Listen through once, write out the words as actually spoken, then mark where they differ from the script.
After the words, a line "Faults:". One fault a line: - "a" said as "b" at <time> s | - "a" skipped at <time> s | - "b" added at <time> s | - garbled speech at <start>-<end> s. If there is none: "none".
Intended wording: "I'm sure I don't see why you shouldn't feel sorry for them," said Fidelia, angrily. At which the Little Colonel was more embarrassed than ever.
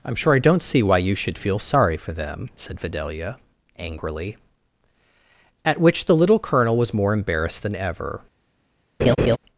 "I'm sure I don't see why you should feel sorry for them," said Fidelia, angrily. At which the Little Colonel was more embarrassed than ever.
Faults:
- "shouldn't" said as "should" at 1.1 s